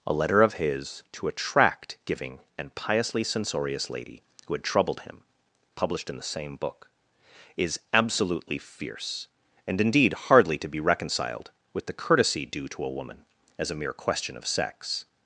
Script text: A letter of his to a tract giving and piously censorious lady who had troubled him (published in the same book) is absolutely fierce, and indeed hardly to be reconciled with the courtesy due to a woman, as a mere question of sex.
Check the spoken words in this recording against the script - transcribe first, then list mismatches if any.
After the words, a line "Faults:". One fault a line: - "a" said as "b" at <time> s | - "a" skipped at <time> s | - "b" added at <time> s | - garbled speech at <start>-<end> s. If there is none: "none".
A letter of his to a tract giving and piously censorious lady who had troubled him (published in the same book) is absolutely fierce, and indeed hardly to be reconciled with the courtesy due to a woman, as a mere question of sex.
Faults:
none